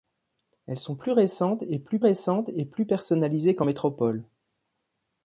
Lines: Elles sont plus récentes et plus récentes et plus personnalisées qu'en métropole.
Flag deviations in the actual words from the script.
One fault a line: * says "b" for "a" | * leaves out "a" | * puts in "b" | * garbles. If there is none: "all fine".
all fine